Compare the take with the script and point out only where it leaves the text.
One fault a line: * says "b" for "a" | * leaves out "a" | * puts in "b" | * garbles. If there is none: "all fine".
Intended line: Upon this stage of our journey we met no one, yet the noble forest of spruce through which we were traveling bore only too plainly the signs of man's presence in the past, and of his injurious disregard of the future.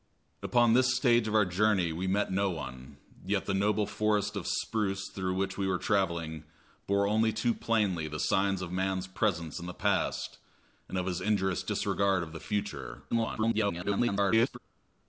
* garbles